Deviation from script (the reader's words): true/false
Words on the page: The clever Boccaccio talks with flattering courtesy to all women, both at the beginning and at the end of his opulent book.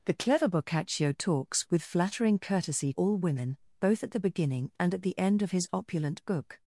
true